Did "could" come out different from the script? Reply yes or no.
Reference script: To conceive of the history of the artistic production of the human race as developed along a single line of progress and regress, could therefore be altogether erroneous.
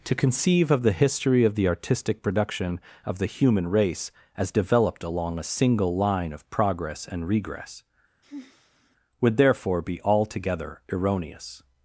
yes